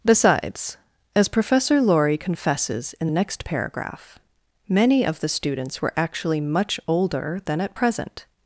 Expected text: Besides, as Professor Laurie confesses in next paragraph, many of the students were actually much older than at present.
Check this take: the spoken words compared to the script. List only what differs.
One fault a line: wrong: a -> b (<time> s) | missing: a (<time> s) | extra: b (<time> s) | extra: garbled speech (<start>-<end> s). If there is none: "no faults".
no faults